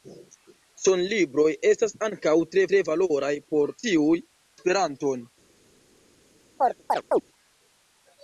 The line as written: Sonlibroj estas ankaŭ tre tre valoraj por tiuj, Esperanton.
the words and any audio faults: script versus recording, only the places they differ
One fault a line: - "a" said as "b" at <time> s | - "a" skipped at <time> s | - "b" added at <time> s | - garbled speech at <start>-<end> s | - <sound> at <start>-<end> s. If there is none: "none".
- chirp at 6.6-7.2 s